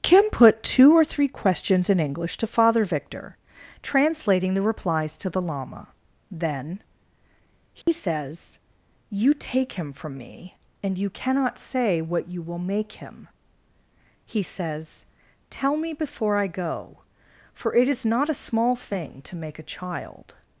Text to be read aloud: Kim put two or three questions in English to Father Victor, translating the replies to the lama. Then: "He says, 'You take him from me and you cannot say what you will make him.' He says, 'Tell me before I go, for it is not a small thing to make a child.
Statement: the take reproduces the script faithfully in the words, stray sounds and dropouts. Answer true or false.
false